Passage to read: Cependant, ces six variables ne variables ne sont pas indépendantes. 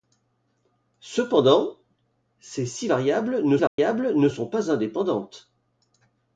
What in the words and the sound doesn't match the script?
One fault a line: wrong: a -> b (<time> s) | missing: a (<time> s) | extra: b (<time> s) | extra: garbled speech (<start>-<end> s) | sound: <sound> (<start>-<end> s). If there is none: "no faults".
sound: dropout (3.7-3.8 s)